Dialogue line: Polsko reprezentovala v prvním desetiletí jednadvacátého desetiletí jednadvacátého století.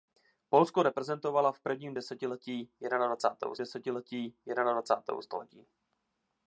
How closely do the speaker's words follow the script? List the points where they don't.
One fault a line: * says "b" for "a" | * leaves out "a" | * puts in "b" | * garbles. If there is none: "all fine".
all fine